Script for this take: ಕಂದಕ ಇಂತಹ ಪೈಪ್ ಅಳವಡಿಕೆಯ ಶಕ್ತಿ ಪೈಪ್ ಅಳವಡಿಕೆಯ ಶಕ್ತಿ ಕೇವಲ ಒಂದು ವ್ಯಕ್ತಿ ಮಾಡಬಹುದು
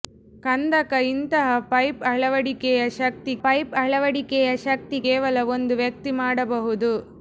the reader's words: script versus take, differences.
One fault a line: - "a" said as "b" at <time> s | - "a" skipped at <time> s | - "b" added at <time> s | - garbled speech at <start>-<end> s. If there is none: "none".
none